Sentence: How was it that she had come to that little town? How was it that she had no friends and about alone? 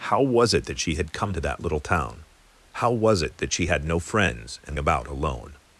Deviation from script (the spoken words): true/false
false